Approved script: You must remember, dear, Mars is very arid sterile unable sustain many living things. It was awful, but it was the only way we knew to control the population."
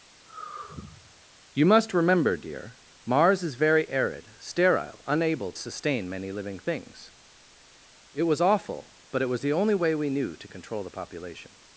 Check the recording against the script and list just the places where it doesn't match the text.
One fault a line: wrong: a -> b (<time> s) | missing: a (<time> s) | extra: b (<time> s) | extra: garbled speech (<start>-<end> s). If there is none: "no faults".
no faults